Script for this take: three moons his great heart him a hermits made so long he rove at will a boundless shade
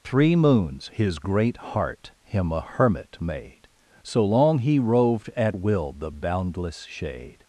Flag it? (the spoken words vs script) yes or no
yes